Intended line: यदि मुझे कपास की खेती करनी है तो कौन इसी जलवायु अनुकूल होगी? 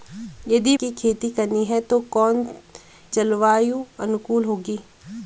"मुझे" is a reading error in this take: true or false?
true